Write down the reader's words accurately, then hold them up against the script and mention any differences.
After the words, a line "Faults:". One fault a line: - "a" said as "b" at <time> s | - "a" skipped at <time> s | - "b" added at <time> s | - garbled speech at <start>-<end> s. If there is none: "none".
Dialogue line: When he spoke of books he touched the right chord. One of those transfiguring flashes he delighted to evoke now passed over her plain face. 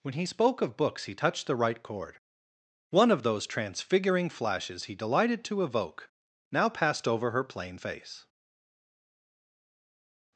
When he spoke of books he touched the right chord. One of those transfiguring flashes he delighted to evoke now passed over her plain face.
Faults:
none